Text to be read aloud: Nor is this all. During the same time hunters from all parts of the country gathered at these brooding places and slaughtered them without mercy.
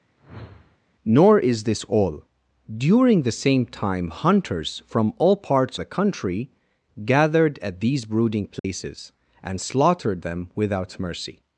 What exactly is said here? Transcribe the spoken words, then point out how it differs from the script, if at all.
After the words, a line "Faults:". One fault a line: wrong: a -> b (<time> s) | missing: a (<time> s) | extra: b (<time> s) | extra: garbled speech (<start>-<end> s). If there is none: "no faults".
Nor is this all. During the same time hunters from all parts the country gathered at these brooding places and slaughtered them without mercy.
Faults:
missing: of (5.8 s)